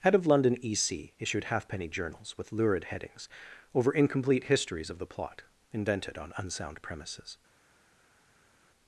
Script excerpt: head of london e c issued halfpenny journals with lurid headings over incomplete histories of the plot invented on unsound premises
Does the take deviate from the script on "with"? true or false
false